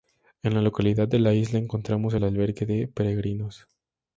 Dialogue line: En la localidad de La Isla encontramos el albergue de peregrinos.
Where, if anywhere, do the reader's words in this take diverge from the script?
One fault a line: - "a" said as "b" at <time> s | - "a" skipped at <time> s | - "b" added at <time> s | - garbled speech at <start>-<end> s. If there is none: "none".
none